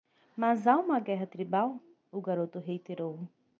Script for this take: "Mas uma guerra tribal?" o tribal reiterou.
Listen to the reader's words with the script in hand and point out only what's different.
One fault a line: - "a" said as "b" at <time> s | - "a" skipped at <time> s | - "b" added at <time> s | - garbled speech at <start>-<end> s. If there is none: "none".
- "há" added at 0.7 s
- "tribal" said as "garoto" at 2.2 s